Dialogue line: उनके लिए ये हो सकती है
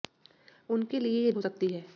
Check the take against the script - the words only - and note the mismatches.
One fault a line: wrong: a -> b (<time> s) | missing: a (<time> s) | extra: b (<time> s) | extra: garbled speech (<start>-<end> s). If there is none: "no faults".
no faults